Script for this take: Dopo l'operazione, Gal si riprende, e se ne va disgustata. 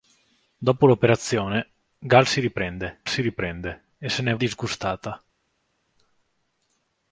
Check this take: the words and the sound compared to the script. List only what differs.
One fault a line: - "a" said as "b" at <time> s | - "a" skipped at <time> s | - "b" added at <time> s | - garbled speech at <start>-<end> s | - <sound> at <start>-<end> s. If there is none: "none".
- "si riprende" added at 3.1 s
- "va" skipped at 4.3 s